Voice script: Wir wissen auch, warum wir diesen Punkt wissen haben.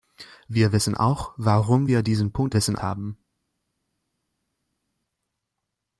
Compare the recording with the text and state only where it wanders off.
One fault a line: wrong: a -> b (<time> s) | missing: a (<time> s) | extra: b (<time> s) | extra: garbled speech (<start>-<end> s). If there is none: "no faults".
no faults